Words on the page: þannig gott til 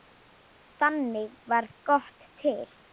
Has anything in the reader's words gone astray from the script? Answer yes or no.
yes